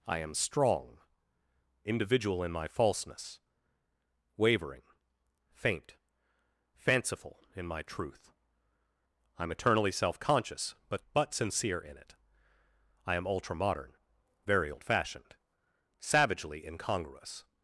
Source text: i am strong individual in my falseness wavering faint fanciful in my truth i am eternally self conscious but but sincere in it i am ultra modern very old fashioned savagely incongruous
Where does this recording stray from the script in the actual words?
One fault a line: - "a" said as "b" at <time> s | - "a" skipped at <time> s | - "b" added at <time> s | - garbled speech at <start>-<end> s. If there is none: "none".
none